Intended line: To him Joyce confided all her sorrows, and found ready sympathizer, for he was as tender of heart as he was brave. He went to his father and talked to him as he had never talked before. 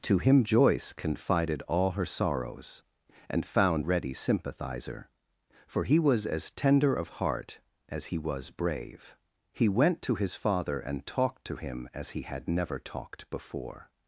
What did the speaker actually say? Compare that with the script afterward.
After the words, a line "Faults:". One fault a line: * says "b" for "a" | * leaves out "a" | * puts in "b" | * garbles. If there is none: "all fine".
To him Joyce confided all her sorrows, and found ready sympathizer, for he was as tender of heart as he was brave. He went to his father and talked to him as he had never talked before.
Faults:
all fine